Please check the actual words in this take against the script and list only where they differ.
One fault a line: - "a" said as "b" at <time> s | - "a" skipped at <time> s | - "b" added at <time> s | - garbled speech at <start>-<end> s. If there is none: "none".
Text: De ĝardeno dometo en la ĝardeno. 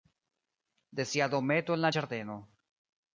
- "ĝardeno" said as "sia" at 1.1 s